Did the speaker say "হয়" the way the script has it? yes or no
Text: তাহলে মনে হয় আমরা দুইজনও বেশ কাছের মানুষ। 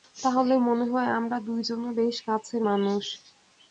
yes